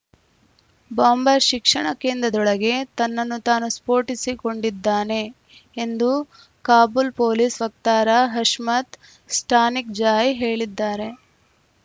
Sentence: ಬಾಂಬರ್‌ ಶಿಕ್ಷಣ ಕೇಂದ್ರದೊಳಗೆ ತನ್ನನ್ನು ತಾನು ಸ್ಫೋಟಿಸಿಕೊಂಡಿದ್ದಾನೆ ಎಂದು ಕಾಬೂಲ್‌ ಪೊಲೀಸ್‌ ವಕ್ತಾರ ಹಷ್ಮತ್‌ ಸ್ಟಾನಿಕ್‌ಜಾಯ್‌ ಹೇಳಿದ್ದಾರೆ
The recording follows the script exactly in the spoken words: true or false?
true